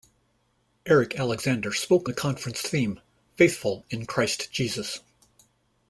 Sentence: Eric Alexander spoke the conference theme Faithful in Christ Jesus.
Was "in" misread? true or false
false